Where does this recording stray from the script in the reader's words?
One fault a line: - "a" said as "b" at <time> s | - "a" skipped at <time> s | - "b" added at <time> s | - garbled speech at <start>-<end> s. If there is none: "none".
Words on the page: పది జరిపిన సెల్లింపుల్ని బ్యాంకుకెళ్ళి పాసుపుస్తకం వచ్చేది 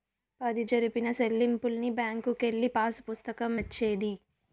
none